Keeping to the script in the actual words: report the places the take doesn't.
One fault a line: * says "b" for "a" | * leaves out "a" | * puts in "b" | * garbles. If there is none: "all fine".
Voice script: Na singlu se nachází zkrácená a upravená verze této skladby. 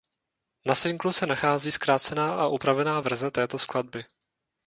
all fine